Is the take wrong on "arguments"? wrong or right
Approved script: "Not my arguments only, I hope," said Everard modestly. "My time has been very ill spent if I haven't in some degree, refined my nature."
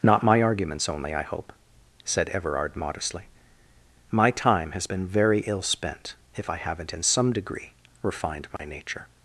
right